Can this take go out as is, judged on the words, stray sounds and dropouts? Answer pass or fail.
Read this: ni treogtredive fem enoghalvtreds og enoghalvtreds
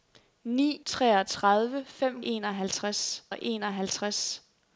pass